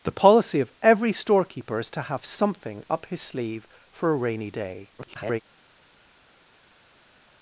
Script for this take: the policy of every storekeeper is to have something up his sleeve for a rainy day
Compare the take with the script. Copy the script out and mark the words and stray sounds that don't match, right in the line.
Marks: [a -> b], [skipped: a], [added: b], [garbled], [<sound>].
the policy of every storekeeper is to have something up his sleeve for a rainy day [garbled]